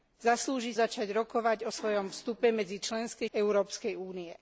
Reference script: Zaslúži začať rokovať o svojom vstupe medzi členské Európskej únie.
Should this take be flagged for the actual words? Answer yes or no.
no